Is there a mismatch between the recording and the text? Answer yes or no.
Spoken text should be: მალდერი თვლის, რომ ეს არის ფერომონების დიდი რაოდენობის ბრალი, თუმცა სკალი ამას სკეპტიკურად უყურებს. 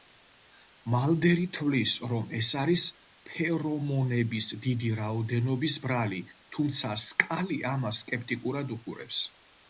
no